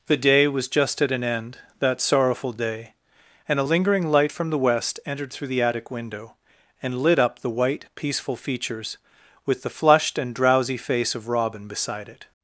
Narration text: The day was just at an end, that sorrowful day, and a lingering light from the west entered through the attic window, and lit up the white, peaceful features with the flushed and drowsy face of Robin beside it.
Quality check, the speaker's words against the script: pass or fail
pass